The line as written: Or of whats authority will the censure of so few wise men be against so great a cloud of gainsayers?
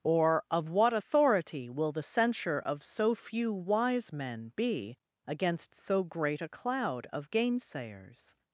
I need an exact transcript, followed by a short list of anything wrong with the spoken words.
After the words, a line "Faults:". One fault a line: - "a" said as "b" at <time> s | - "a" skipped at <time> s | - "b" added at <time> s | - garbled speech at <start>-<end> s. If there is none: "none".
Or of what authority will the censure of so few wise men be against so great a cloud of gainsayers?
Faults:
- "whats" said as "what" at 0.7 s